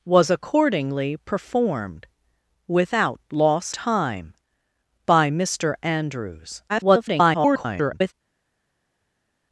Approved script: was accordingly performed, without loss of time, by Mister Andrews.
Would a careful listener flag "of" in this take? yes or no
yes